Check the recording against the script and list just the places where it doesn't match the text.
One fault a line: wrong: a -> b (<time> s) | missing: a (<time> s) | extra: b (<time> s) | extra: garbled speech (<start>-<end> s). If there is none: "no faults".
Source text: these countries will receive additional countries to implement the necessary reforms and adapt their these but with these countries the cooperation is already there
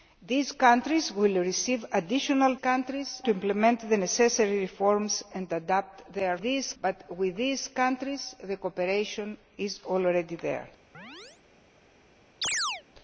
no faults